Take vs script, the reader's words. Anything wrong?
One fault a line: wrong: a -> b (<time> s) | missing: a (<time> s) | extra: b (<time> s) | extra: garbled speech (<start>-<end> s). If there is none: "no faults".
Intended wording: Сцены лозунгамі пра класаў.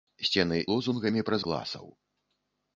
no faults